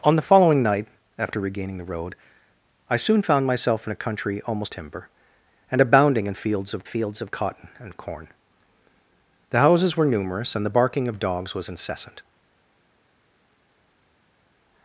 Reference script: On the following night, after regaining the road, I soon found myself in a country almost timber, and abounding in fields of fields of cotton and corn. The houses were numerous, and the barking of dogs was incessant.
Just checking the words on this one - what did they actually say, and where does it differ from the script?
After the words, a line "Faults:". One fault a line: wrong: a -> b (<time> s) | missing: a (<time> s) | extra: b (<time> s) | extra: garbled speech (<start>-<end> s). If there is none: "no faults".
On the following night, after regaining the road, I soon found myself in a country almost timber, and abounding in fields of fields of cotton and corn. The houses were numerous, and the barking of dogs was incessant.
Faults:
no faults